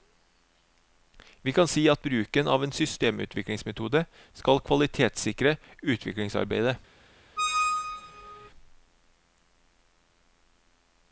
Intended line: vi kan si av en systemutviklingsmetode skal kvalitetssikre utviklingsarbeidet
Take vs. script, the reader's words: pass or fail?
fail